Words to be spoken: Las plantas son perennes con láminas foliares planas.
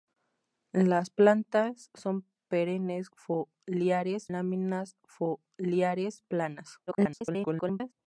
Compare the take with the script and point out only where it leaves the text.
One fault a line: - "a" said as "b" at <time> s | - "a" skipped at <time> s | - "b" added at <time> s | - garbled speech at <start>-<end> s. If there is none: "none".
- "con" said as "foliares" at 3.2 s
- garbled speech at 6.9-7.9 s